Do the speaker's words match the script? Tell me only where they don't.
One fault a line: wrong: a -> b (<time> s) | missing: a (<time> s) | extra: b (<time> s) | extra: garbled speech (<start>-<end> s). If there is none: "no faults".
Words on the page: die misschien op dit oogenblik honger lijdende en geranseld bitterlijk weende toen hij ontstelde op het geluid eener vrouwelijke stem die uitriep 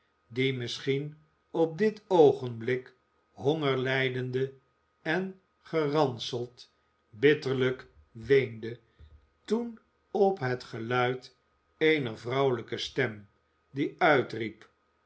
missing: hij ontstelde (9.8 s)